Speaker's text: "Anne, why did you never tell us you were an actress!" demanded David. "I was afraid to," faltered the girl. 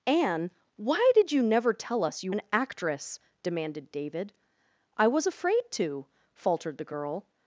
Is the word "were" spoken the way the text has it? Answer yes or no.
no